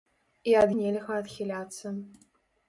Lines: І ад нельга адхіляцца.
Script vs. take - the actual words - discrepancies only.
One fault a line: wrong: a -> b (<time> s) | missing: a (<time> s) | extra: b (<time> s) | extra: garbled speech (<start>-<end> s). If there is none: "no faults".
no faults